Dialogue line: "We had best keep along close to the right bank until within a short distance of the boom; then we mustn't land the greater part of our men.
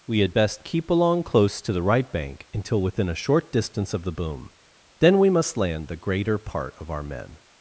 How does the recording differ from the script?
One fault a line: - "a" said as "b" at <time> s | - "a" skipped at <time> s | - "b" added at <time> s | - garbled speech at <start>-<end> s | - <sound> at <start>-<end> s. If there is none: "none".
- "mustn't" said as "must" at 5.3 s